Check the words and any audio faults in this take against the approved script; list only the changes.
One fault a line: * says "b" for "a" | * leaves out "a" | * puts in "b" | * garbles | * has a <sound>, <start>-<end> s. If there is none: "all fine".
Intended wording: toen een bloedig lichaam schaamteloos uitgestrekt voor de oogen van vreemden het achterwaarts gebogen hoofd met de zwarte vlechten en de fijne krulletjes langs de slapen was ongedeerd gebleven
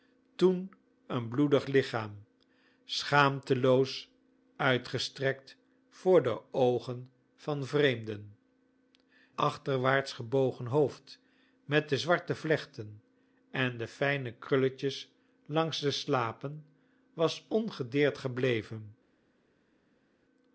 * leaves out "het"